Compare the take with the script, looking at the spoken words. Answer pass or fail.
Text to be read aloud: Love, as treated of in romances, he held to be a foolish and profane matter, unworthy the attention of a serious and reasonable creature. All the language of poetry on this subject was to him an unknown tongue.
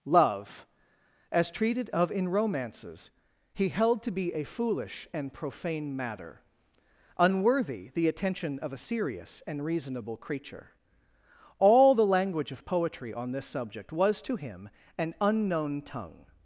pass